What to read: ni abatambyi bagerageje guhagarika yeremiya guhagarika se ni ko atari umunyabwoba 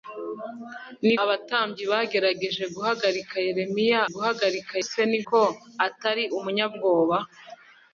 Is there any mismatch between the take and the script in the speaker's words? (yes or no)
no